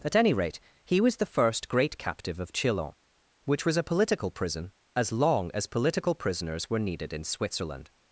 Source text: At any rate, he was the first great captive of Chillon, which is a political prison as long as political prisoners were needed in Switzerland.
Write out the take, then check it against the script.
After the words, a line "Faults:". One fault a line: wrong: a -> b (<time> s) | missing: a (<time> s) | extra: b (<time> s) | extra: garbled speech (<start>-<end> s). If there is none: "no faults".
At any rate, he was the first great captive of Chillon, which was a political prison as long as political prisoners were needed in Switzerland.
Faults:
wrong: is -> was (3.7 s)